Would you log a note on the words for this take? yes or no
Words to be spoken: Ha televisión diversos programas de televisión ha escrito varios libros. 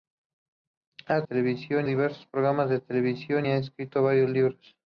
no